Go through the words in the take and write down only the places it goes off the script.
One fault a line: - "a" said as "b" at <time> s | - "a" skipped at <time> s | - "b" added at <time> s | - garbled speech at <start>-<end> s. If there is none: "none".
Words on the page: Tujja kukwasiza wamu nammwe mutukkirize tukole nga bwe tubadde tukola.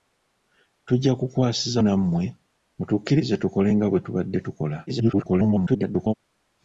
- "wamu" skipped at 1.8 s
- garbled speech at 4.9-6.1 s